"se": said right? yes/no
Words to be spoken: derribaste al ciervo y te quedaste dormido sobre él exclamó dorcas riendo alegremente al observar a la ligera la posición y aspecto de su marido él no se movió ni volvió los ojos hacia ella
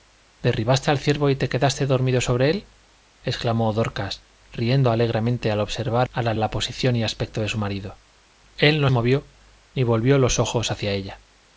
no